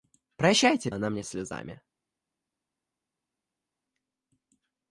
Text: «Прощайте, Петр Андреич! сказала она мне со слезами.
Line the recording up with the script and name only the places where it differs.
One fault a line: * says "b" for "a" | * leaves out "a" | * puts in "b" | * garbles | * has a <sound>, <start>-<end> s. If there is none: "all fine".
* leaves out "Петр Андреич сказала"
* leaves out "со"